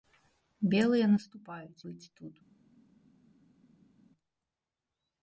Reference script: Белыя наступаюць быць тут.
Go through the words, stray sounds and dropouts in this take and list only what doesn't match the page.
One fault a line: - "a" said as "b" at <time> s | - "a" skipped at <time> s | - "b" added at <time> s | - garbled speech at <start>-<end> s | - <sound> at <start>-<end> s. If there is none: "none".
none